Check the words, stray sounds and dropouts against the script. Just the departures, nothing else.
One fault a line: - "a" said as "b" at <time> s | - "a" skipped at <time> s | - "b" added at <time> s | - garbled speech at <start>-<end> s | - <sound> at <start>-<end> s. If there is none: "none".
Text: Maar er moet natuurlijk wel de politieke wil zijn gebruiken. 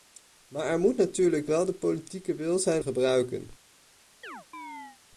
- chirp at 4.2-5.0 s